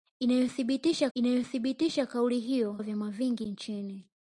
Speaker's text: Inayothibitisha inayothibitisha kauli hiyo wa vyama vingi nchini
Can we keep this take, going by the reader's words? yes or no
yes